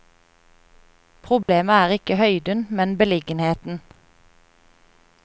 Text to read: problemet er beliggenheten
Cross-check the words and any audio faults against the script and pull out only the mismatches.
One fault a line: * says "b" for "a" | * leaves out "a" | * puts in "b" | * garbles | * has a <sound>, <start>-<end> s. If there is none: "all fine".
* has a dropout, 1.4-1.5 s
* puts in "ikke høyden men"